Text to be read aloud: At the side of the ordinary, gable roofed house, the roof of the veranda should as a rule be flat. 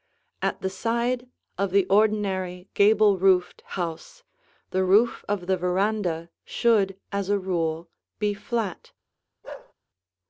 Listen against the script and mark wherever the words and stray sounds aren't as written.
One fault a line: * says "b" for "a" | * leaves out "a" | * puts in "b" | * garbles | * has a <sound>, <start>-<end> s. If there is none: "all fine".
* has a bark, 9.4-9.7 s